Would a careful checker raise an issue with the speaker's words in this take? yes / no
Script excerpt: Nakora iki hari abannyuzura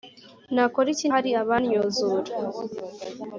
no